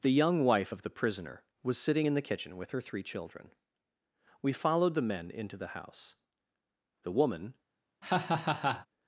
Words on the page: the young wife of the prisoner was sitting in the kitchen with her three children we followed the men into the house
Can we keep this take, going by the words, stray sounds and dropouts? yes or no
no